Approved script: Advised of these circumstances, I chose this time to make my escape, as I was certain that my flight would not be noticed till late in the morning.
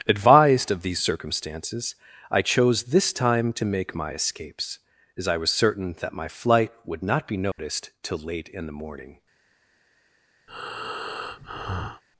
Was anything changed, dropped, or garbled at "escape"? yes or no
yes